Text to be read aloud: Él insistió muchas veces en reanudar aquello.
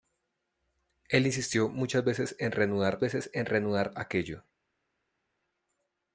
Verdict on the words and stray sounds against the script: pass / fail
fail